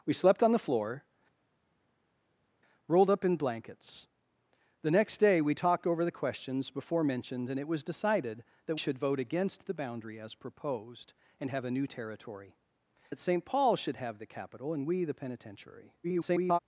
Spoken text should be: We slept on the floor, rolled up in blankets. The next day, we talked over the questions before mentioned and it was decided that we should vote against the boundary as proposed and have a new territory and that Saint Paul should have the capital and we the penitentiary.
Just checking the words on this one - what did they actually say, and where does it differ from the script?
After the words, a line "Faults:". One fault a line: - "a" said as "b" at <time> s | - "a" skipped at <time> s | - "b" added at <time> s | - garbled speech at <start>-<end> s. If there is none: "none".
We slept on the floor, rolled up in blankets. The next day, we talked over the questions before mentioned and it was decided that should vote against the boundary as proposed and have a new territory that Saint Paul should have the capital and we the penitentiary. [garbled]
Faults:
- "we" skipped at 8.8 s
- "and" skipped at 12.5 s
- garbled speech at 16.0-16.6 s